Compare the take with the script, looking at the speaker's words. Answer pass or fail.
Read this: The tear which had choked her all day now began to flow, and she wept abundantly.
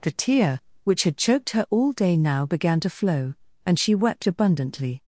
pass